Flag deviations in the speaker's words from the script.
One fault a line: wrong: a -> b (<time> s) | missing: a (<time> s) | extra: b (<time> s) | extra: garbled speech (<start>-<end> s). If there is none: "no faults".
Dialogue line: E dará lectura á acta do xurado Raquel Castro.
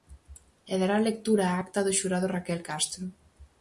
no faults